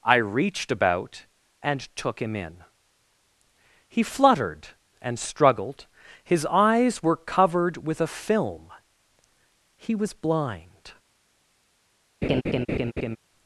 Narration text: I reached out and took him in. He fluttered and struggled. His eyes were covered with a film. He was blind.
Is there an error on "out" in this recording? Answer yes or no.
yes